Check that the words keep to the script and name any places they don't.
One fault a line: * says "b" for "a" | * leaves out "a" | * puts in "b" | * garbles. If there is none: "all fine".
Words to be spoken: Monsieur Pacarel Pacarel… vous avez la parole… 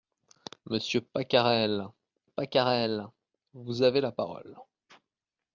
all fine